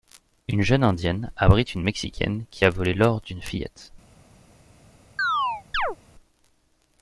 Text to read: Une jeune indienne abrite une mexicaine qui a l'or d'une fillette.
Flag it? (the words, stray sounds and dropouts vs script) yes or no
yes